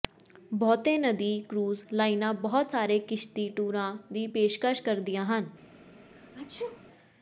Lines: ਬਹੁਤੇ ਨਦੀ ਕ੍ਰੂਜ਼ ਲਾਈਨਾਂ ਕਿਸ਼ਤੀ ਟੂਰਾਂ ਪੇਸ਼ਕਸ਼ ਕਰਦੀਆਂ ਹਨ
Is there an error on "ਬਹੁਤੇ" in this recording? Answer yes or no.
no